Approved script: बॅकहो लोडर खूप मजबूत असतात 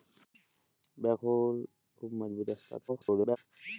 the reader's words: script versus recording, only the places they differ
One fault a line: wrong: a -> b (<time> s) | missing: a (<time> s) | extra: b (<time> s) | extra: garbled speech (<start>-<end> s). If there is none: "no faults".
missing: लोडर (1.4 s)
extra: garbled speech (2.9-3.4 s)